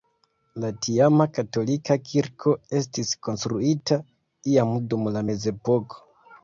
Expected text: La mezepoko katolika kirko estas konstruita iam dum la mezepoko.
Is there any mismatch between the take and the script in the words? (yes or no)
yes